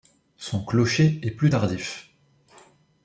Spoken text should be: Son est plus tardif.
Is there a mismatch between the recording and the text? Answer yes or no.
yes